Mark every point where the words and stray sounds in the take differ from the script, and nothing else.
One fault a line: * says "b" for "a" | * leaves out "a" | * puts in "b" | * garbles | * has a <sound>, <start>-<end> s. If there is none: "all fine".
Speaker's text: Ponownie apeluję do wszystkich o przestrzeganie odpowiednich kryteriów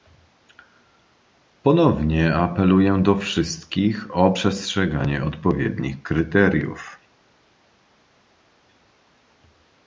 all fine